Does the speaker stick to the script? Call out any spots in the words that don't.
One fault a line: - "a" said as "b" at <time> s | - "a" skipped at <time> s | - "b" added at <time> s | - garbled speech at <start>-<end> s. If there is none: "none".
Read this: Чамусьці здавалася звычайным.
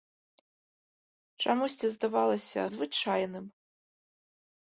none